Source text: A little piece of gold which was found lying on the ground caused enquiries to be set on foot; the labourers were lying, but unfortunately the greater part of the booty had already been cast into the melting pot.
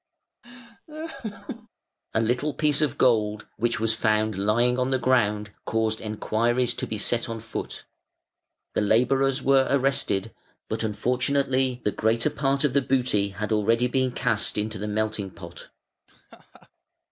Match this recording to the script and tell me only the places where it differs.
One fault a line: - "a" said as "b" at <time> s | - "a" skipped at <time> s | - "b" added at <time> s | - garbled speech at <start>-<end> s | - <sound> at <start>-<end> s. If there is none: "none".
- laugh at 0.4-1.7 s
- "lying" said as "arrested" at 9.7 s
- laugh at 16.1-16.7 s